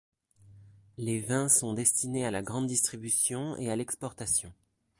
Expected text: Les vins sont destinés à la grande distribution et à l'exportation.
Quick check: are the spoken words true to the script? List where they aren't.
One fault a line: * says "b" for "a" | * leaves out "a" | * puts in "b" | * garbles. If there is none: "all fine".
all fine